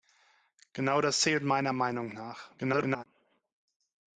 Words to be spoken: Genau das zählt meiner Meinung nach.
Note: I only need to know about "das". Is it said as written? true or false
true